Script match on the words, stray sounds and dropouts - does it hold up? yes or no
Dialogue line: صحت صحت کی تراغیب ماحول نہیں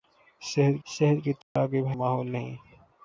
no